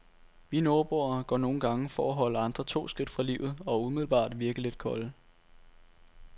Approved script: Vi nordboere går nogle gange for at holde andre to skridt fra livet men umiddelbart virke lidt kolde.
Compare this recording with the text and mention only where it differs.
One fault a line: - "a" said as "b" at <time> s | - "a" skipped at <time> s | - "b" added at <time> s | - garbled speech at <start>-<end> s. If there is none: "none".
- "men" said as "og" at 3.6 s